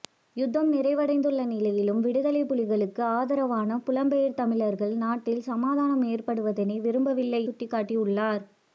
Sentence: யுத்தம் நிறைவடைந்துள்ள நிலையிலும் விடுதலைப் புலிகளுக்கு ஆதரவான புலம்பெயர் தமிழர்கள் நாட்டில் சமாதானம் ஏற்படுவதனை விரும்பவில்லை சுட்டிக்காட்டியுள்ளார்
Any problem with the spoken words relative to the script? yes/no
no